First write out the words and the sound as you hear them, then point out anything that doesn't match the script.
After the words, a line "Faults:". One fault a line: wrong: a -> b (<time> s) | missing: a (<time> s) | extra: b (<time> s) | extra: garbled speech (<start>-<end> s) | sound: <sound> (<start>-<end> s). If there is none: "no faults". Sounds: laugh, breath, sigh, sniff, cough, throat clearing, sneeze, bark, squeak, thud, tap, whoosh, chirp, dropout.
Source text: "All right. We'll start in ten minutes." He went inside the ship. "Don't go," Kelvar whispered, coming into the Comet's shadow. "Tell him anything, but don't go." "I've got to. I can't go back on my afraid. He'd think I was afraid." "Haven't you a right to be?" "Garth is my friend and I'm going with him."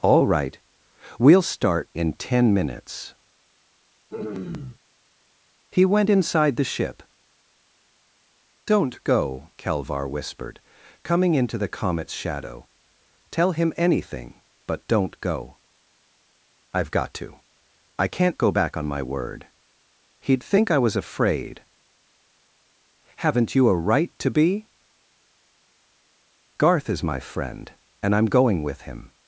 "All right. We'll start in ten minutes." He went inside the ship. "Don't go," Kelvar whispered, coming into the Comet's shadow. "Tell him anything, but don't go." "I've got to. I can't go back on my word. He'd think I was afraid." "Haven't you a right to be?" "Garth is my friend and I'm going with him."
Faults:
sound: throat clearing (4.1-4.8 s)
wrong: afraid -> word (19.0 s)